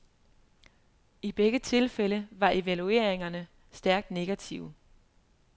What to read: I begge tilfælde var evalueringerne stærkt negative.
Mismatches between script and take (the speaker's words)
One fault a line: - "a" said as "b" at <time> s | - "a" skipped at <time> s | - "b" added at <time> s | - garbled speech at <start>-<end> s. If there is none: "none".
none